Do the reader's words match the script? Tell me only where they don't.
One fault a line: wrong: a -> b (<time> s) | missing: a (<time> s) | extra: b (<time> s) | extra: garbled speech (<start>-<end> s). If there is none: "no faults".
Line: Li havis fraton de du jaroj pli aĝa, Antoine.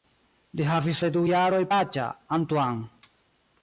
missing: fraton (1.0 s)
missing: pli (1.6 s)